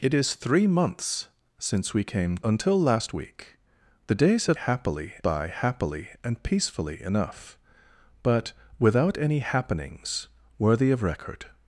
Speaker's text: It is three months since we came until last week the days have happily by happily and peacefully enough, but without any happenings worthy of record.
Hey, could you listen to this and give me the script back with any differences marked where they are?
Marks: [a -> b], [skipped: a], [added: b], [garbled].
It is three months since we came until last week the days have happily by happily and peacefully enough, but without any happenings worthy of record.